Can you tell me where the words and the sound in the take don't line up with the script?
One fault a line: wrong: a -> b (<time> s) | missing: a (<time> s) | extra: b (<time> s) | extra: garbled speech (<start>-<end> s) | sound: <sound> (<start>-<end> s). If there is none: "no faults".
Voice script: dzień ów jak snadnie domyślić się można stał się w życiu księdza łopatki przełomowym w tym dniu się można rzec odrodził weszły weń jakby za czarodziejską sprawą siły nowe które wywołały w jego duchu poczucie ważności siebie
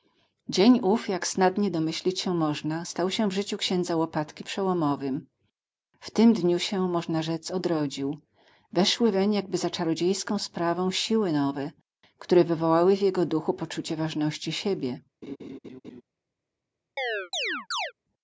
sound: laugh (15.2-16.0 s)
sound: chirp (17.0-17.9 s)